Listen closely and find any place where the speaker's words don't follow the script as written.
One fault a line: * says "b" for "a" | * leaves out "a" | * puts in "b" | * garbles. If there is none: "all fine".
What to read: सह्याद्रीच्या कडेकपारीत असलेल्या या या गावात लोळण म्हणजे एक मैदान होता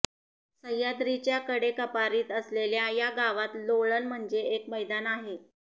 * leaves out "या"
* says "आहे" for "होता"